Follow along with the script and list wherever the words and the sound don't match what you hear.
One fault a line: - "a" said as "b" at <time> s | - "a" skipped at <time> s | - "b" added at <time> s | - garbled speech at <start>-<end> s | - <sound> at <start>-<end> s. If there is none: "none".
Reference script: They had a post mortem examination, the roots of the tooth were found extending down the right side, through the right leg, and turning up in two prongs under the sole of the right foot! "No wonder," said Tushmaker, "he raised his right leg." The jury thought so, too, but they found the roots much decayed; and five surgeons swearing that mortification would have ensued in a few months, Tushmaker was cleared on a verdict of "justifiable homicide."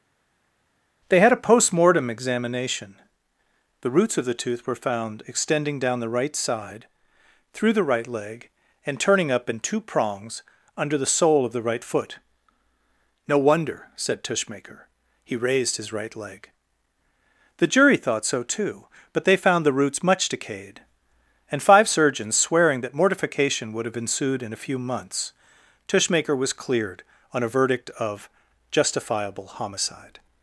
none